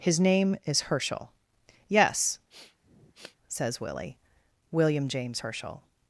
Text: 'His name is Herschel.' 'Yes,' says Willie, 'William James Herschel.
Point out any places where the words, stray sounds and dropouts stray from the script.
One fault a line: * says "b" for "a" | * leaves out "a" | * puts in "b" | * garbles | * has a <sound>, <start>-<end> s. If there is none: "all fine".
* has a sniff, 2.5-3.4 s